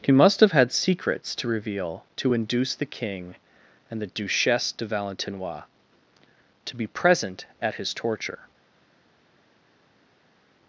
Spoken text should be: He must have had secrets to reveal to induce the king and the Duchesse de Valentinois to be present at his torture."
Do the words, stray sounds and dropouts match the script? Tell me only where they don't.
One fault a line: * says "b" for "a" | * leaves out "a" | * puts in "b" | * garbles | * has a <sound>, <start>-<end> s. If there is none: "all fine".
all fine